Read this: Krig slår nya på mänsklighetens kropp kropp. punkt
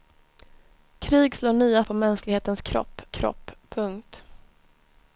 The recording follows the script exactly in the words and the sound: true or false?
true